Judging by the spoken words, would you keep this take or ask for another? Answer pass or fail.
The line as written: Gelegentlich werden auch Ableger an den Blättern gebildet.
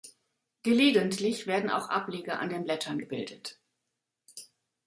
pass